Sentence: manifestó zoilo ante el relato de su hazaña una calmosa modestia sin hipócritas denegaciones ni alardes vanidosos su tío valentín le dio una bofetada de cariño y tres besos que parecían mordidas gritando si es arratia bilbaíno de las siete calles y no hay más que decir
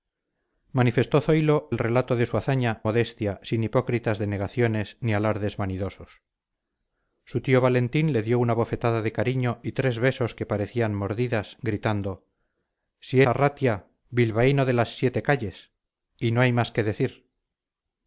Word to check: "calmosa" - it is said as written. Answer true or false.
false